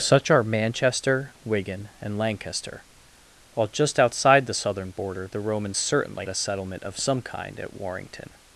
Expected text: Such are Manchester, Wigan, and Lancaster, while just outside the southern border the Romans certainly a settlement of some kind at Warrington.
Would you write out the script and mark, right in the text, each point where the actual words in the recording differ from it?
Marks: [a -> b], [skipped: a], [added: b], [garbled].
Such are Manchester, Wigan, and Lancaster, while just outside the southern border the Romans certainly a settlement of some kind at Warrington.